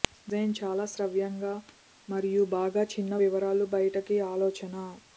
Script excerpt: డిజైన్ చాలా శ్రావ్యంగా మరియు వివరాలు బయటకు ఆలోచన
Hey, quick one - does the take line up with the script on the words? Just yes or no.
no